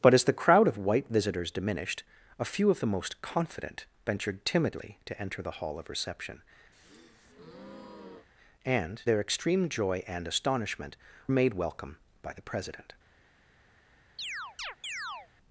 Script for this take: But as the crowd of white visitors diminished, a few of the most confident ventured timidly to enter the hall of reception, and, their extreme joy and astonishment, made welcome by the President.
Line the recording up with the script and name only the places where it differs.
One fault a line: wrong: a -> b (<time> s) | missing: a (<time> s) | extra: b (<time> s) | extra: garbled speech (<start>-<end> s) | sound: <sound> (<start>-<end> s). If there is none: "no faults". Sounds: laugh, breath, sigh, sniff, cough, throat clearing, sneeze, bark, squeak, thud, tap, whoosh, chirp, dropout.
sound: breath (6.7-8.3 s)
sound: chirp (14.2-15.3 s)